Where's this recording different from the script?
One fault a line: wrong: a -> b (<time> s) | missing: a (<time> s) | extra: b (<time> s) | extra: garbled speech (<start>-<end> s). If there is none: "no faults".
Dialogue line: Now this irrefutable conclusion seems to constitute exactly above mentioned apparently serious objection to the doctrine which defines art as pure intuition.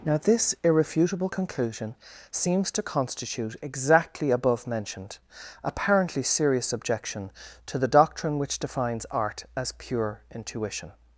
no faults